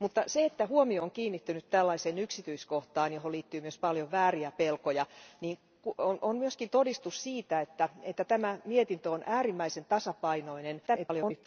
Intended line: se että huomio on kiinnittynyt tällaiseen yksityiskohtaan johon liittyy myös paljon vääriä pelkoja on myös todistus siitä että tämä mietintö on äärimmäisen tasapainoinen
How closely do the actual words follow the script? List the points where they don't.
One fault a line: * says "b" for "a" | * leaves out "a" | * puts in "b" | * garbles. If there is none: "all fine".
* garbles